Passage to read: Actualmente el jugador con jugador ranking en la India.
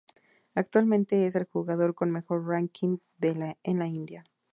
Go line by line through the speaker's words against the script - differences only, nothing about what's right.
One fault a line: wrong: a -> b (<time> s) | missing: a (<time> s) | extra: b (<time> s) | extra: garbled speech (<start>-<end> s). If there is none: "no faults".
extra: es (1.3 s)
wrong: jugador -> mejor (2.1 s)